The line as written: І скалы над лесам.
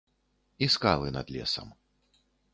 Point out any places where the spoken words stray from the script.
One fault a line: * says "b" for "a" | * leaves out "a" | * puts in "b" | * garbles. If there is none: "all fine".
all fine